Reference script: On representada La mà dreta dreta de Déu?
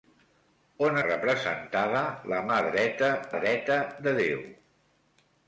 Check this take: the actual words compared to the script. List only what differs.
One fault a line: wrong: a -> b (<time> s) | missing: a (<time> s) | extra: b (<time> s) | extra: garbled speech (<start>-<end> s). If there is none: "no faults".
no faults